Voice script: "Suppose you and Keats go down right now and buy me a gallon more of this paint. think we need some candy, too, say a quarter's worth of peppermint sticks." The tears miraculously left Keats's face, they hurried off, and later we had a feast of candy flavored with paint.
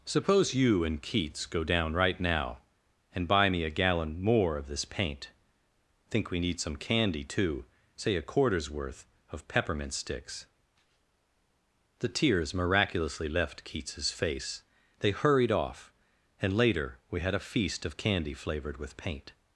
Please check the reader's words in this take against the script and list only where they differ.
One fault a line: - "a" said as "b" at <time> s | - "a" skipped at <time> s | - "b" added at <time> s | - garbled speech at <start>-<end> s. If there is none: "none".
none